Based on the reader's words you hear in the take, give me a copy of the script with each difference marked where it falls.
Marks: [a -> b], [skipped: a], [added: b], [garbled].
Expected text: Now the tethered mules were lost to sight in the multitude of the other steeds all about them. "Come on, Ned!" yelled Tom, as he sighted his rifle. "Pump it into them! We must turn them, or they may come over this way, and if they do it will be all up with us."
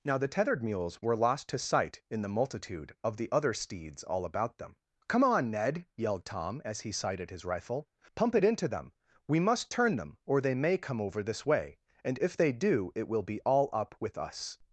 Now the tethered mules were lost to sight in the multitude of the other steeds all about them. "Come on, Ned!" yelled Tom, as he sighted his rifle. "Pump it into them! We must turn them, or they may come over this way, and if they do it will be all up with us."